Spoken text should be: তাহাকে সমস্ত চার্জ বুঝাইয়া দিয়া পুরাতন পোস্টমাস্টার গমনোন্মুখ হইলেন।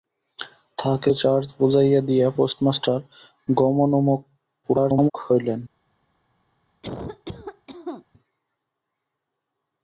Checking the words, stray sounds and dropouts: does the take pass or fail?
fail